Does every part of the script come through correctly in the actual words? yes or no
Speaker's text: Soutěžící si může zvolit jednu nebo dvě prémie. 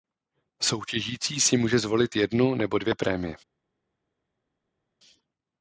yes